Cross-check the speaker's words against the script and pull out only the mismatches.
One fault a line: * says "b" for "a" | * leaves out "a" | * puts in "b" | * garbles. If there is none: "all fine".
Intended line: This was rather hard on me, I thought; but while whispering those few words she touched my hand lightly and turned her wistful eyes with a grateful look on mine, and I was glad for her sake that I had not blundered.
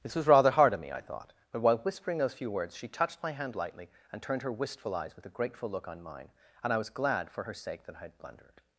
* leaves out "not"